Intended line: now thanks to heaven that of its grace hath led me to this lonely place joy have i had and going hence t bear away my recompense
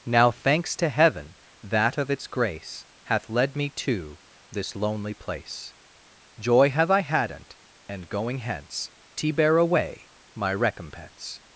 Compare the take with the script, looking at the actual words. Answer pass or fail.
fail